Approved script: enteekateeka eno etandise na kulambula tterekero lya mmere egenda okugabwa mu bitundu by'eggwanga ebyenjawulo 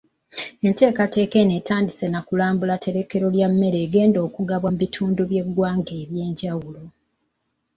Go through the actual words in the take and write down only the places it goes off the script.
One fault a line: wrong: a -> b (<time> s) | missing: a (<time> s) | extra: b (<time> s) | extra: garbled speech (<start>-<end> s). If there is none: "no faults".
no faults